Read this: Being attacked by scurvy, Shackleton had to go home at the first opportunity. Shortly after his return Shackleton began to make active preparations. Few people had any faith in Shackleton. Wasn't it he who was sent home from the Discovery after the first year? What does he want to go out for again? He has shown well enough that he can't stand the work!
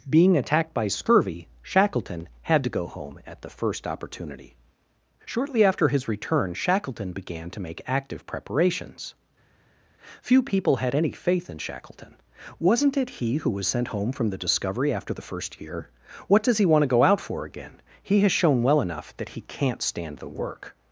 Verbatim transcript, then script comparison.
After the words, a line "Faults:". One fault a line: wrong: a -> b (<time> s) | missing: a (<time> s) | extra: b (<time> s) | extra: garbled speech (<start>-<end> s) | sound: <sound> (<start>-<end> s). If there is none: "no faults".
Being attacked by scurvy, Shackleton had to go home at the first opportunity. Shortly after his return Shackleton began to make active preparations. Few people had any faith in Shackleton. Wasn't it he who was sent home from the Discovery after the first year? What does he want to go out for again? He has shown well enough that he can't stand the work!
Faults:
no faults